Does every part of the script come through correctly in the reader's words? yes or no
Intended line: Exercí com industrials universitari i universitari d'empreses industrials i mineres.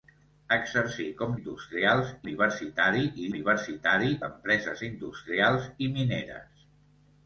yes